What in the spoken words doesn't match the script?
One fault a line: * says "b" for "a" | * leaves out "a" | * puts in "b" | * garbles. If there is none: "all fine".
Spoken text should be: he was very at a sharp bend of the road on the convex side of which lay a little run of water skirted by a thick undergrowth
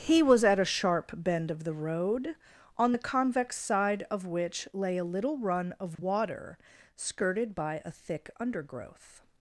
* leaves out "very"